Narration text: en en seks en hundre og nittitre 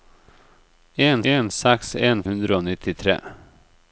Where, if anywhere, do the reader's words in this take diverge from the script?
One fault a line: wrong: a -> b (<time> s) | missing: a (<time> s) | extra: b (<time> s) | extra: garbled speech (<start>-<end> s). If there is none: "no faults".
no faults